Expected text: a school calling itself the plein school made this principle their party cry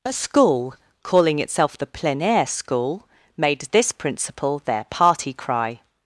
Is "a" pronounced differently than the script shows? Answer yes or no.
no